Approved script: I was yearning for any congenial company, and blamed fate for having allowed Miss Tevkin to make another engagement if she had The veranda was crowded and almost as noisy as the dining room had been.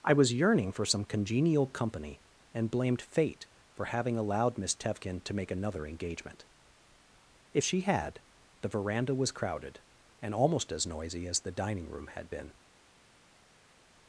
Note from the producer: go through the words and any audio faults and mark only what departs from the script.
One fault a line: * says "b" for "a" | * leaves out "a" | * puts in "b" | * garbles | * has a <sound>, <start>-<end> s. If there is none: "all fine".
* says "some" for "any"